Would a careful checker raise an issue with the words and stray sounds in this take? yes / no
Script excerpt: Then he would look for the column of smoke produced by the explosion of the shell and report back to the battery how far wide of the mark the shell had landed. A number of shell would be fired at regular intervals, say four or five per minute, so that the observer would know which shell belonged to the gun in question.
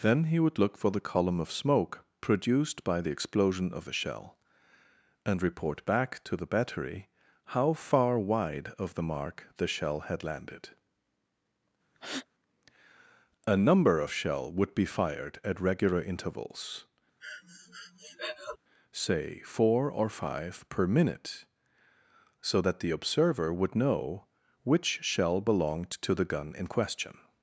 yes